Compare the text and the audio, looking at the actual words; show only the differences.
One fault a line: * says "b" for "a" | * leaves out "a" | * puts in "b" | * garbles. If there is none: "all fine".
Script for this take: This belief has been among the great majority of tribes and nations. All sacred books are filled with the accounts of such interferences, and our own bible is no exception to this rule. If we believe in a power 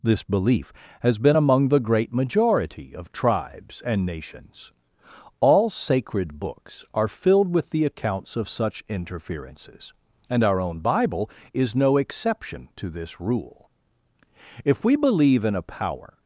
all fine